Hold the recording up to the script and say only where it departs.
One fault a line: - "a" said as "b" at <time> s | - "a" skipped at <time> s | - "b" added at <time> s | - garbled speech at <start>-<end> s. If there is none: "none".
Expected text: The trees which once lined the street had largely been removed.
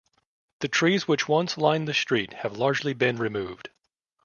- "had" said as "have" at 2.3 s